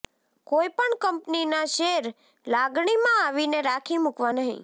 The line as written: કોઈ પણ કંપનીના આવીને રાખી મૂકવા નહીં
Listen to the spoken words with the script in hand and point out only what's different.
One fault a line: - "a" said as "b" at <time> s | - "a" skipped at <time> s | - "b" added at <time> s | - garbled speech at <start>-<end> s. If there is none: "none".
- "શેર લાગણીમાં" added at 1.7 s